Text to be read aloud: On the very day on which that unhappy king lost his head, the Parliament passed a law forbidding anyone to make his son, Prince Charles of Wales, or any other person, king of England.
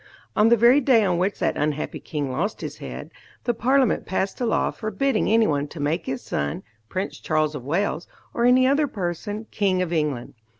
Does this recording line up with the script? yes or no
yes